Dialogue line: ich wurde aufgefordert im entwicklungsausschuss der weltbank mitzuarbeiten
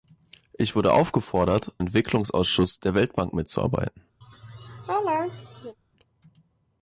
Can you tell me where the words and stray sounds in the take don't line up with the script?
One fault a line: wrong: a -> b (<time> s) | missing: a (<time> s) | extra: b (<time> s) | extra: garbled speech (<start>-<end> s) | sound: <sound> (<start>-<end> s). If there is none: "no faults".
missing: im (1.8 s)
sound: laugh (4.2-5.8 s)